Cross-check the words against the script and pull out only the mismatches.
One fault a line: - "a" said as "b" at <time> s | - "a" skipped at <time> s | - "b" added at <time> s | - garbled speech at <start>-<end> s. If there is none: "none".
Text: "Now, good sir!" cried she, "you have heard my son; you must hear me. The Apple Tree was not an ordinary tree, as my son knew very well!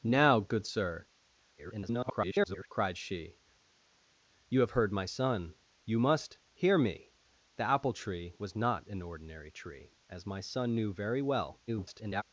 - garbled speech at 1.6-2.7 s
- garbled speech at 11.7-12.2 s